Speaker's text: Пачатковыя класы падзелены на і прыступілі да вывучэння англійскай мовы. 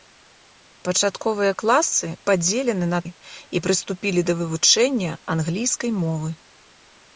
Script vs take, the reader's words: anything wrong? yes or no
no